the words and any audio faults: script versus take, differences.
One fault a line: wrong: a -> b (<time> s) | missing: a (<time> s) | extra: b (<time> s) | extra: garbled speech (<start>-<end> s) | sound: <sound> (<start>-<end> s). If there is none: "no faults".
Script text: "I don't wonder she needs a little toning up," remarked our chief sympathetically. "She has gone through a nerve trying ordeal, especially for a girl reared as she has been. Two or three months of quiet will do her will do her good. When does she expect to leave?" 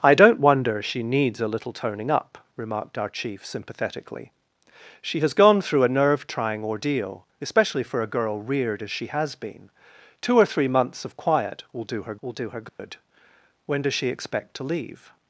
sound: dropout (12.7-12.8 s)